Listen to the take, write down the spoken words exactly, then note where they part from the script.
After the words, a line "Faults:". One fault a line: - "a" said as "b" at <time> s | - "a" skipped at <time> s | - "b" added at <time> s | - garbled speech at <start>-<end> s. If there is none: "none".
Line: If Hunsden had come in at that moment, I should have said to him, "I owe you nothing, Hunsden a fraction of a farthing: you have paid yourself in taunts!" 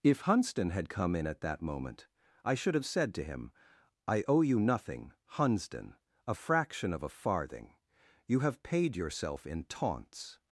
If Hunsden had come in at that moment, I should have said to him, "I owe you nothing, Hunsden a fraction of a farthing: you have paid yourself in taunts!"
Faults:
none